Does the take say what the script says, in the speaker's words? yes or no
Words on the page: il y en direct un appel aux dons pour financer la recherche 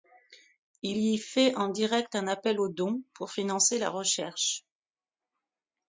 no